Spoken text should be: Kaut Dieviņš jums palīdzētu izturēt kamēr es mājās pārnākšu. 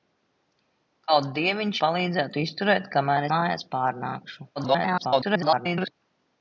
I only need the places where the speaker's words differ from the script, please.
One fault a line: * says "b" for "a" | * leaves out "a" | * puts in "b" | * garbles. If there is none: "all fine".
* leaves out "jums"
* leaves out "es"
* garbles